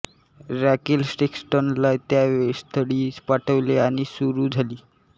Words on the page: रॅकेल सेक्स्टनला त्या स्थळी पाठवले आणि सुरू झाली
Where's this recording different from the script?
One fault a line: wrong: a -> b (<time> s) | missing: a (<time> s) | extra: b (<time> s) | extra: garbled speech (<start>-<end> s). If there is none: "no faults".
no faults